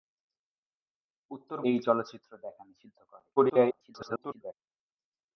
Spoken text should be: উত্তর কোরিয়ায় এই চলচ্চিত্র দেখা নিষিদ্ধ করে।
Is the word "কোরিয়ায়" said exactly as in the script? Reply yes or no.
no